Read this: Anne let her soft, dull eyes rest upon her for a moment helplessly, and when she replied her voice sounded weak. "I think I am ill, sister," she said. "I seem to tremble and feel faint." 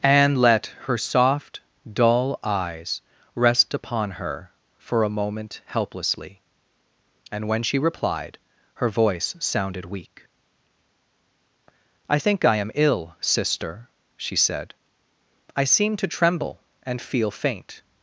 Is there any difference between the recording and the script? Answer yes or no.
no